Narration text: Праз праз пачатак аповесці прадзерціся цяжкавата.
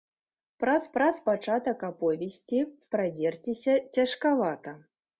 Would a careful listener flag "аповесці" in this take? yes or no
no